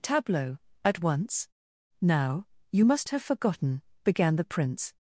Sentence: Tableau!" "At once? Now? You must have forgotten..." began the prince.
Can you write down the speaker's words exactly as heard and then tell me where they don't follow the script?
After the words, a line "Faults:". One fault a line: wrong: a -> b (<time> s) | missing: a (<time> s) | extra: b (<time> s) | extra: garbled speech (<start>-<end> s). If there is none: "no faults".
Tableau!" "At once? Now? You must have forgotten..." began the prince.
Faults:
no faults